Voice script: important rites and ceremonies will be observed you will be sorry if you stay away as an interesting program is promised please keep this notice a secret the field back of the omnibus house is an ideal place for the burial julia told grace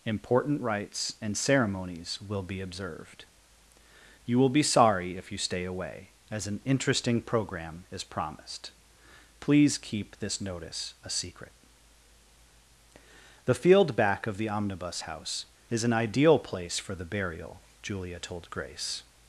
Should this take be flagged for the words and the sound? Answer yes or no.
no